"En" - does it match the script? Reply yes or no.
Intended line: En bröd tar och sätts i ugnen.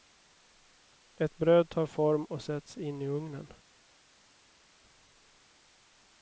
no